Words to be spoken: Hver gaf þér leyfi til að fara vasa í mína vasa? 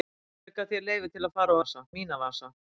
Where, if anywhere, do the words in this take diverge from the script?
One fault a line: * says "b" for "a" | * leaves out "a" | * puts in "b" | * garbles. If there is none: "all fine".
all fine